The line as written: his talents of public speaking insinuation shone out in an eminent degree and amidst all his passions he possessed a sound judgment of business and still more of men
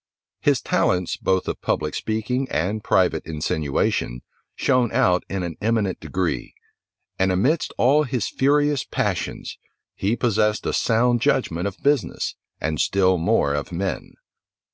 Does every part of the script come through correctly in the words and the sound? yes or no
no